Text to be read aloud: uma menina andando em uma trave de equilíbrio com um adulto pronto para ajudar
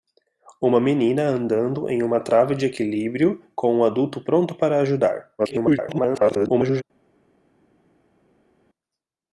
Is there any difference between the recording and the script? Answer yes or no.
yes